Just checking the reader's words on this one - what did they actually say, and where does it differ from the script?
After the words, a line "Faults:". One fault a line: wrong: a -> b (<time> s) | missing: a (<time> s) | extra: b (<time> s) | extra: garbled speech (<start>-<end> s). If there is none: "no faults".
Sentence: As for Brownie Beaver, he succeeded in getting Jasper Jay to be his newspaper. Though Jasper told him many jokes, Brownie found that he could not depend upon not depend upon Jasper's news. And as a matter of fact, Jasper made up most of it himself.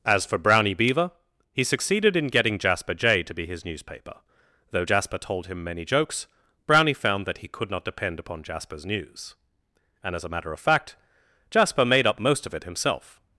As for Brownie Beaver, he succeeded in getting Jasper Jay to be his newspaper. Though Jasper told him many jokes, Brownie found that he could not depend upon Jasper's news. And as a matter of fact, Jasper made up most of it himself.
Faults:
missing: not depend upon (8.4 s)